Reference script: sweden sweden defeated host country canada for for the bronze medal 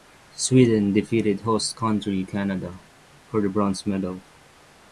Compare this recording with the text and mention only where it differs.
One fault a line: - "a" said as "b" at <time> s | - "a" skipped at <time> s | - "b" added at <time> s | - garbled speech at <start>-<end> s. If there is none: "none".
- "sweden" skipped at 0.9 s
- "for" skipped at 3.4 s